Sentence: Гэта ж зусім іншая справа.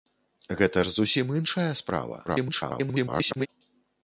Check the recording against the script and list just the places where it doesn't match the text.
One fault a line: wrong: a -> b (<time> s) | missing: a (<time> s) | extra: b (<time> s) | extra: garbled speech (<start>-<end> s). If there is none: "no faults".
extra: garbled speech (2.3-3.5 s)